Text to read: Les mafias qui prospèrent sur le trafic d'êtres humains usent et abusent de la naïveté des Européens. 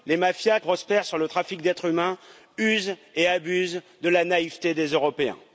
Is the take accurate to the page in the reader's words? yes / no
no